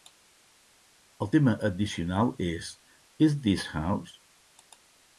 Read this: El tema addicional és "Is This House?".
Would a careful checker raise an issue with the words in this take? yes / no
no